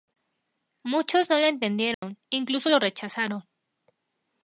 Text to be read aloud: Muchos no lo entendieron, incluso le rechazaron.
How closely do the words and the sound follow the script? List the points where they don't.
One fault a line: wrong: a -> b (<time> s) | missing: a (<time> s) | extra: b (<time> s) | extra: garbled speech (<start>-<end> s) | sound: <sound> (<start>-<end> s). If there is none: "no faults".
sound: dropout (1.9-2.0 s)
wrong: le -> lo (2.7 s)